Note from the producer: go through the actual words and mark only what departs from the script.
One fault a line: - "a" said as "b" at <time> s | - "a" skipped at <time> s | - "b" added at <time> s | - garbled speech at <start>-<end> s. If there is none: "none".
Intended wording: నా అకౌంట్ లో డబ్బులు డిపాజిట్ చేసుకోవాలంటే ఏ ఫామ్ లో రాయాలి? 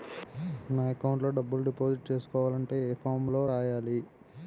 none